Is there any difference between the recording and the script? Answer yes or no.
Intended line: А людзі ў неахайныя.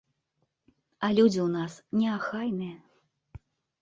yes